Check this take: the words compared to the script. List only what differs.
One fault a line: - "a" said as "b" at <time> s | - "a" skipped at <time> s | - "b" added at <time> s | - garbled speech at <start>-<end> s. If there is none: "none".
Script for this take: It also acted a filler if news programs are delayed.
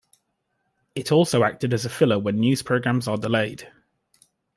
- "as" added at 1.8 s
- "if" said as "when" at 2.2 s